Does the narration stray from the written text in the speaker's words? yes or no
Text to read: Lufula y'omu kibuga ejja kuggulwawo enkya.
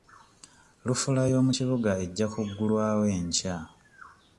no